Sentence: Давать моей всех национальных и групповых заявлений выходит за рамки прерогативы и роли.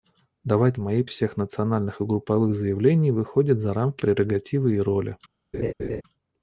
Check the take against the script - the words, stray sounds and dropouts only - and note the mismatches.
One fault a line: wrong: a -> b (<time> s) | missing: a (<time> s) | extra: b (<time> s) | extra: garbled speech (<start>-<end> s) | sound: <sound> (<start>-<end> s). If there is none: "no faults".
sound: laugh (5.5-6.0 s)